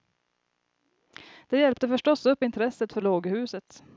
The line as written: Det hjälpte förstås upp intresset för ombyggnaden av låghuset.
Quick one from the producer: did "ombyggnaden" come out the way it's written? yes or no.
no